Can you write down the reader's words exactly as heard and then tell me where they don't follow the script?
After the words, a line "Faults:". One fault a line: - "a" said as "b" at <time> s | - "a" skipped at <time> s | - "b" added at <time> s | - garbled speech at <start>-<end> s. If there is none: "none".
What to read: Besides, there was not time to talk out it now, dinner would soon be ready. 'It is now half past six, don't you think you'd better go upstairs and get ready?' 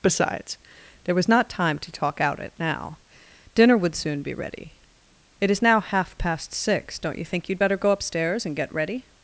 Besides, there was not time to talk out it now, dinner would soon be ready. 'It is now half past six, don't you think you'd better go upstairs and get ready?'
Faults:
none